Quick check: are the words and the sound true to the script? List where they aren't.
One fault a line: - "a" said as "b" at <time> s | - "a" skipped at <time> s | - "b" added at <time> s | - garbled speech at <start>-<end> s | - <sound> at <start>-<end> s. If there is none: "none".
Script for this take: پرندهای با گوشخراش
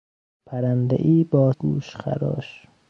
none